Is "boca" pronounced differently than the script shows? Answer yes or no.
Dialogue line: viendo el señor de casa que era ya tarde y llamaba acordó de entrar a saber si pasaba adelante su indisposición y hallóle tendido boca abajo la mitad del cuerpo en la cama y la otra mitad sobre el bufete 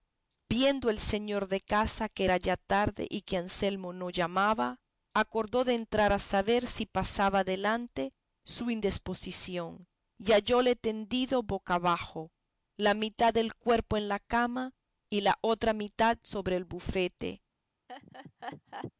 no